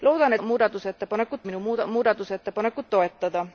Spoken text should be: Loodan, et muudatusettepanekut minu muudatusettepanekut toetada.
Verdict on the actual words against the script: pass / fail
pass